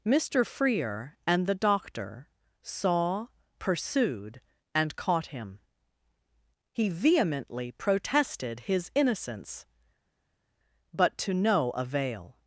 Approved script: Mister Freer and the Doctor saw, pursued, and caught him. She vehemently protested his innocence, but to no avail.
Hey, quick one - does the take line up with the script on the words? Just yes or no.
no